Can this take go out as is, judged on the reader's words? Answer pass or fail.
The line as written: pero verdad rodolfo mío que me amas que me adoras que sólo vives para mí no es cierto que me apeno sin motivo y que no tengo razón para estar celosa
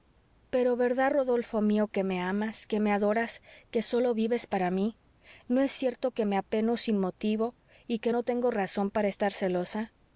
pass